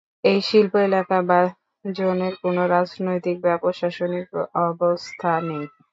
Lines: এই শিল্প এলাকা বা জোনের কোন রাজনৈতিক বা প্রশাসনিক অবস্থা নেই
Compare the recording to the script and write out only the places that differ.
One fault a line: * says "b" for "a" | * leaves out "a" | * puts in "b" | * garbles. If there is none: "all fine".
all fine